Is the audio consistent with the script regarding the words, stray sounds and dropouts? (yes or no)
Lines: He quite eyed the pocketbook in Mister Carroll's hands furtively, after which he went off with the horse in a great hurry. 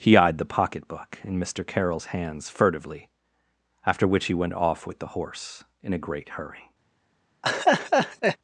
no